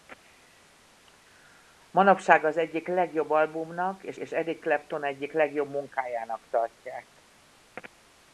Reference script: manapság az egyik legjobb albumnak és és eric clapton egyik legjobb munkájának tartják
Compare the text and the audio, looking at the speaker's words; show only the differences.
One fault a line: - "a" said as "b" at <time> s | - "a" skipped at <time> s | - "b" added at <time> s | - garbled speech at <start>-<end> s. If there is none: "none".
none